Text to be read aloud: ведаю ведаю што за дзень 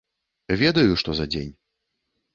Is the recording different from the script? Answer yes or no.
yes